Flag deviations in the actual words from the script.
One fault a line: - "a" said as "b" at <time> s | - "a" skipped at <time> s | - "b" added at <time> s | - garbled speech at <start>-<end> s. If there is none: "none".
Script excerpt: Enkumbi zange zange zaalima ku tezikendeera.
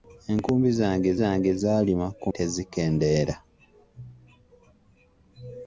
none